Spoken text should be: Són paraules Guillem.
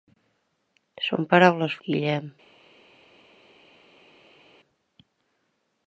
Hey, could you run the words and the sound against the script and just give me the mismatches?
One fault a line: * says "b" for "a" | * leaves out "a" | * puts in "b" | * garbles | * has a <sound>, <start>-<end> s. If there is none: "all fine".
all fine